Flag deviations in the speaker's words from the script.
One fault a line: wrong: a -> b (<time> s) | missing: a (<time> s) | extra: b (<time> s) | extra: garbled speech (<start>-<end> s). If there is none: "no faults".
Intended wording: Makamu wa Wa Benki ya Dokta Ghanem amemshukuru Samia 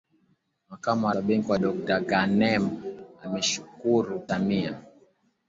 no faults